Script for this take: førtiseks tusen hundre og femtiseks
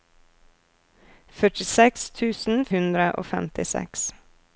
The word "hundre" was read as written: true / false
true